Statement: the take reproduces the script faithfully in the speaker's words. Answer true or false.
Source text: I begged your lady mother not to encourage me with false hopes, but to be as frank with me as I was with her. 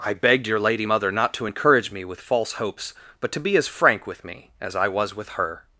true